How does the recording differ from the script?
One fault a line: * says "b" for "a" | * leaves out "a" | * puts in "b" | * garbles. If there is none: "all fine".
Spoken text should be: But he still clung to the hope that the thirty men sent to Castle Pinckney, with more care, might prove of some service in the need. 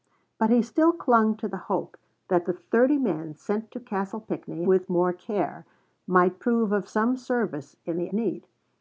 all fine